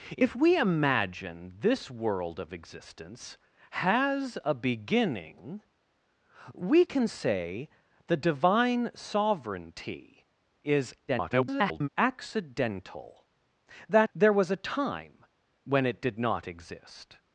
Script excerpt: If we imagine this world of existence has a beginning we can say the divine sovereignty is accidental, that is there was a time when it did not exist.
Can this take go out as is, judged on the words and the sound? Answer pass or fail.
fail